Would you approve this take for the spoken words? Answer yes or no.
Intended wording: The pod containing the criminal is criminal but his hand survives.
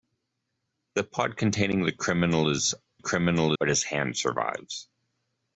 yes